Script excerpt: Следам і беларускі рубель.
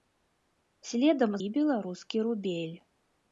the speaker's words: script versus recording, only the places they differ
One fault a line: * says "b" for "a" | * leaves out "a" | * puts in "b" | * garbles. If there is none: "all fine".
all fine